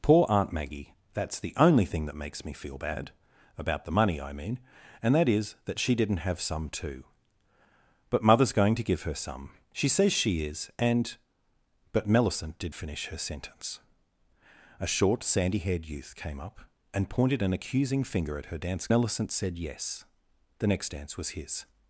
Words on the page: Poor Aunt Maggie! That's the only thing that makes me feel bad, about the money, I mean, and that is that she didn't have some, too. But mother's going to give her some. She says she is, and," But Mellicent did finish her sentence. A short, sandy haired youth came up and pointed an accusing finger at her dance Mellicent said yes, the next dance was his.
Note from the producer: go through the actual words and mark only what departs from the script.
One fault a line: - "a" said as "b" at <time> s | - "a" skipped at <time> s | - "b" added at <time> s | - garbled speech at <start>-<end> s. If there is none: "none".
none